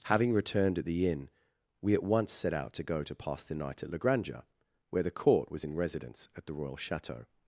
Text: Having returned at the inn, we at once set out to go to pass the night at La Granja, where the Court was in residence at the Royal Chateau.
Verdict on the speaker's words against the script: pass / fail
pass